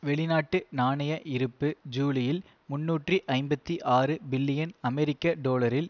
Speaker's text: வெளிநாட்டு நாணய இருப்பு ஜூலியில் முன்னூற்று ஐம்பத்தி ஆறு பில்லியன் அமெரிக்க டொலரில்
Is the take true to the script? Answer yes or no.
yes